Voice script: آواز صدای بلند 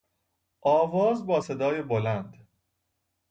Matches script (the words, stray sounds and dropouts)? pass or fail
fail